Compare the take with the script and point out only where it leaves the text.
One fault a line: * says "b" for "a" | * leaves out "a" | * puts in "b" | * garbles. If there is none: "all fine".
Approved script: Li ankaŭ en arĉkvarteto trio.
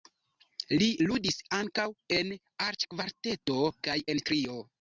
* puts in "ludis"
* puts in "kaj en"